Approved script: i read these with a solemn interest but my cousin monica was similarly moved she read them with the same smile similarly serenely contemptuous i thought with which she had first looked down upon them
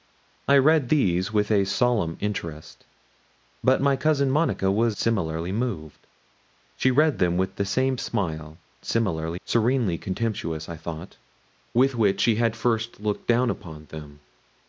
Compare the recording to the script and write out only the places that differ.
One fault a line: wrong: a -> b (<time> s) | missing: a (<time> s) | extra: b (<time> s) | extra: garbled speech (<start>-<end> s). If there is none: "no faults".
no faults